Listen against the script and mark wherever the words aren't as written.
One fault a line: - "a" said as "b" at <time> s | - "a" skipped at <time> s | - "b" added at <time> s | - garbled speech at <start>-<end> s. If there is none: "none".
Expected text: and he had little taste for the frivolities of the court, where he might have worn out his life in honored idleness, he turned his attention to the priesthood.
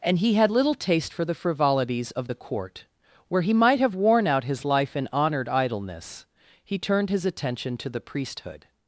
none